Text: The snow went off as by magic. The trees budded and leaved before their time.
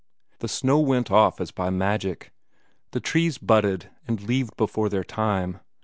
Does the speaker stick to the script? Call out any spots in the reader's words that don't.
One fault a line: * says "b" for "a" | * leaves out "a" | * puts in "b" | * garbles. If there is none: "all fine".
all fine